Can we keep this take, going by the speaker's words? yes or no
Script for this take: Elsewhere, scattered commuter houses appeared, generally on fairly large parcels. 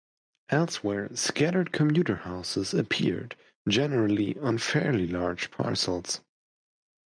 yes